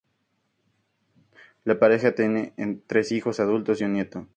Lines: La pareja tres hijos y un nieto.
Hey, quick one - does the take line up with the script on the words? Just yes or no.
no